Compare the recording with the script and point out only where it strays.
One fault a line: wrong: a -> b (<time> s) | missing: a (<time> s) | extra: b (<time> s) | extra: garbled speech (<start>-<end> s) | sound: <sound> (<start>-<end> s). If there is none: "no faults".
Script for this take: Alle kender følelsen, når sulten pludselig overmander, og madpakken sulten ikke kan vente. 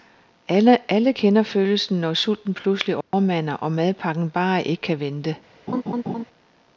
sound: dropout (3.0-3.1 s)
wrong: sulten -> bare (4.3 s)
sound: laugh (5.7-6.2 s)